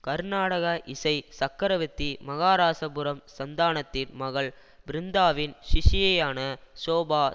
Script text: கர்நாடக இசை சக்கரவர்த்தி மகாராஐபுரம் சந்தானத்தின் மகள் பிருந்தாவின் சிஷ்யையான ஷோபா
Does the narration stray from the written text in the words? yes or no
no